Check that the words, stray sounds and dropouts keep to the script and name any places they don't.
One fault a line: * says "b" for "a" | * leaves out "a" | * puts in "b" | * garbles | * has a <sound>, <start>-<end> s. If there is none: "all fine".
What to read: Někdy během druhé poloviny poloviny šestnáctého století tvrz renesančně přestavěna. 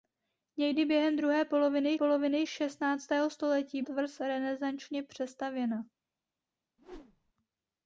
* has a whoosh, 6.8-7.3 s